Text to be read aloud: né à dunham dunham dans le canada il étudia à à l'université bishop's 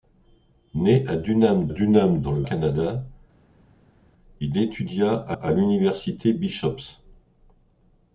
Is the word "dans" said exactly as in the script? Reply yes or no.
yes